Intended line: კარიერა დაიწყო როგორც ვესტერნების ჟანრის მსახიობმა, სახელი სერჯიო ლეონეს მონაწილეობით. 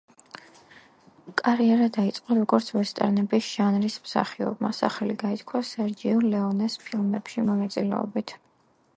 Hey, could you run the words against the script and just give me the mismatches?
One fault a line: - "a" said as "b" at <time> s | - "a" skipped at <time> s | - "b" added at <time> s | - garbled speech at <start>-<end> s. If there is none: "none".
- "გაითქვა" added at 5.2 s
- "ფილმებში" added at 6.9 s